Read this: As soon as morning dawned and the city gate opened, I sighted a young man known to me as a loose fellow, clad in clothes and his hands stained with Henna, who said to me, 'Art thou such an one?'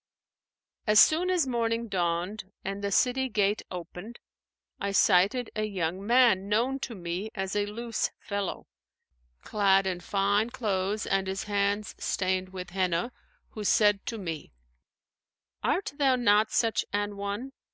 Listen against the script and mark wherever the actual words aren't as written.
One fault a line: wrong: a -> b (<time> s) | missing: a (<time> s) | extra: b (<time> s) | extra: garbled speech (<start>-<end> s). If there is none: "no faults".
extra: fine (10.0 s)
extra: not (16.1 s)